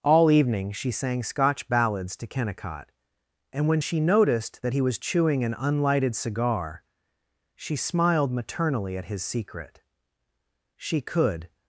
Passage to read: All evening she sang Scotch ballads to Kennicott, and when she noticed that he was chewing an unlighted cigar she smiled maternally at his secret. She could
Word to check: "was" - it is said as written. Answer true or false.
true